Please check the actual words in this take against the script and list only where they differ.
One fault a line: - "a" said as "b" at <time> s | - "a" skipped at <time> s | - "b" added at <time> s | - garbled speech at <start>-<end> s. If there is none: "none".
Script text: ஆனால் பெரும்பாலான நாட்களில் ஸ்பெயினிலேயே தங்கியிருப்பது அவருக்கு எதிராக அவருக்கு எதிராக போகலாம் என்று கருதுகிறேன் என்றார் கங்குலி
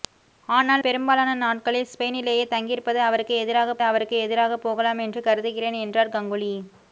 none